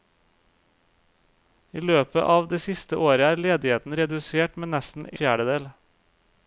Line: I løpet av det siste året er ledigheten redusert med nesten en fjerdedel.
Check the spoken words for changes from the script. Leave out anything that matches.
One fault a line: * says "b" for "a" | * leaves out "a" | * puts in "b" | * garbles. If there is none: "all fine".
* leaves out "en"